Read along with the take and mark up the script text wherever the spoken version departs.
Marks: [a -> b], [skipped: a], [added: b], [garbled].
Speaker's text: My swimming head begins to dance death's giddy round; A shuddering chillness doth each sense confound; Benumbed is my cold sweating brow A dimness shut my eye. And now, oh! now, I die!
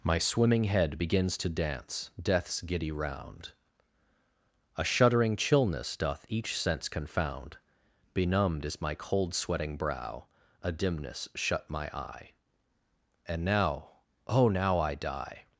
My swimming head begins to dance death's giddy round; A shuddering chillness doth each sense confound; Benumbed is my cold sweating brow A dimness shut my eye. And now, oh! now, I die!